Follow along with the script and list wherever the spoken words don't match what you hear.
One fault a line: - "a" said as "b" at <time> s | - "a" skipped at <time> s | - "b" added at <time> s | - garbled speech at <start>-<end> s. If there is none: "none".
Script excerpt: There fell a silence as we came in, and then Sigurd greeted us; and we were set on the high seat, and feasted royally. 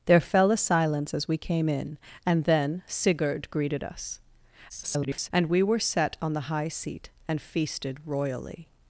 - garbled speech at 4.7-5.3 s